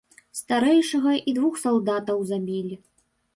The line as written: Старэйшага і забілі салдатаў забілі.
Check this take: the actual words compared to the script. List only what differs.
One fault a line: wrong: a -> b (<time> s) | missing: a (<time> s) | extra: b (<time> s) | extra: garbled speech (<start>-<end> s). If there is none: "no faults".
wrong: забілі -> двух (1.4 s)